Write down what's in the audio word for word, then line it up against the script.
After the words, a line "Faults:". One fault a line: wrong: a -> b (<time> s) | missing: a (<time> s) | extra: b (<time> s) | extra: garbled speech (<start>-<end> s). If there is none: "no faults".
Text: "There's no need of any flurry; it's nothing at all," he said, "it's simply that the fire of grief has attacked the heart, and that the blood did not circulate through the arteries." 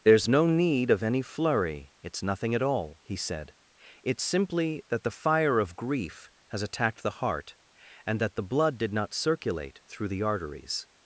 "There's no need of any flurry; it's nothing at all," he said, "it's simply that the fire of grief has attacked the heart, and that the blood did not circulate through the arteries."
Faults:
no faults